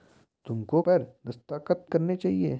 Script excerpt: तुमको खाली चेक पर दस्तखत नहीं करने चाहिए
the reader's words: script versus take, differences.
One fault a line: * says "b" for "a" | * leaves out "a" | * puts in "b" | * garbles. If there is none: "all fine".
* leaves out "खाली चेक"
* leaves out "नहीं"